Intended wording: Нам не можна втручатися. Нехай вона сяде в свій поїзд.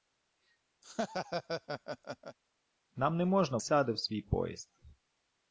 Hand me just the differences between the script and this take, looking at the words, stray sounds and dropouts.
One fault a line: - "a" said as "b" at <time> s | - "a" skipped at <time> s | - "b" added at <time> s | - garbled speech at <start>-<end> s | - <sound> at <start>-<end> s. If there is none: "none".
- laugh at 0.8-2.4 s
- "втручатися Нехай вона" skipped at 3.6 s